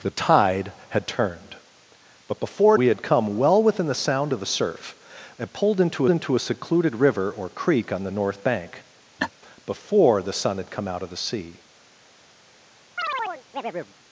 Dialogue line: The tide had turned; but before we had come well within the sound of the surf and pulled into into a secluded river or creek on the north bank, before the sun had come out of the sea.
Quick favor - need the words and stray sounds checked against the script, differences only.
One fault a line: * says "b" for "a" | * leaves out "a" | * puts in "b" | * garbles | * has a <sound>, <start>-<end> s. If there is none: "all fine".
* has a laugh, 9.2-9.3 s
* has a chirp, 13.0-13.9 s